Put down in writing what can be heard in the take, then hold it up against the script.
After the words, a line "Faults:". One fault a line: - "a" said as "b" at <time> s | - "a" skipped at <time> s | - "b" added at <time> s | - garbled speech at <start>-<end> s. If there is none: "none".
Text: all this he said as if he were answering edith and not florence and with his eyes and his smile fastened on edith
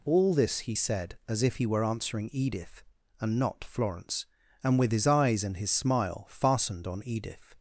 all this he said as if he were answering edith and not florence and with his eyes and his smile fastened on edith
Faults:
none